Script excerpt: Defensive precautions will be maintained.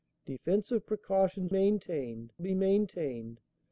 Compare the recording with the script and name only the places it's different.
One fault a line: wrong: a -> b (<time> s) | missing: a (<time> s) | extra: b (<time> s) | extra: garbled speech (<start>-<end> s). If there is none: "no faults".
wrong: will -> maintained (1.5 s)